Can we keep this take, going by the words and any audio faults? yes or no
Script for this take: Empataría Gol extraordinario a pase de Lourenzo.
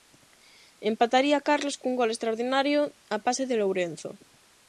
no